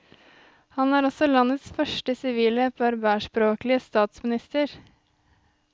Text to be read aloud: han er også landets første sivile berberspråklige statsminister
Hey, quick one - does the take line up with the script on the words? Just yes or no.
yes